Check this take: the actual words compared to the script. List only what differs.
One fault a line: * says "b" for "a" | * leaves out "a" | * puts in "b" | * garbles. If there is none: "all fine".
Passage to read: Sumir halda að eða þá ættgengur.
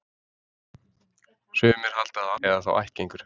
all fine